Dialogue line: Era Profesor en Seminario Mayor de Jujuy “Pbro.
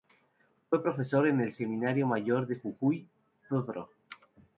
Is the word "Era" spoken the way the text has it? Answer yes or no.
no